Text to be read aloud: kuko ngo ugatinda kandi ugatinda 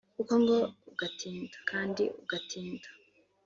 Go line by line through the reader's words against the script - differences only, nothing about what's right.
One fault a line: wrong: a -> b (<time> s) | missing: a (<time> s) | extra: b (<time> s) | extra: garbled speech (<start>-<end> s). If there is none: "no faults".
no faults